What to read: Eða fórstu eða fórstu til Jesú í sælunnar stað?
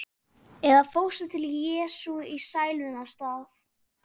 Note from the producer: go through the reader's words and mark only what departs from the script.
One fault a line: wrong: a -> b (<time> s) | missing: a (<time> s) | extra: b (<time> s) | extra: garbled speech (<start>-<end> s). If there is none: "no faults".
missing: eða fórstu (1.3 s)